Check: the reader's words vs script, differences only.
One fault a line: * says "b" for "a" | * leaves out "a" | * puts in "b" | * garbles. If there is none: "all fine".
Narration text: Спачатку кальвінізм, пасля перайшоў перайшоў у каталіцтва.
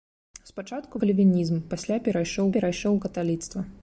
all fine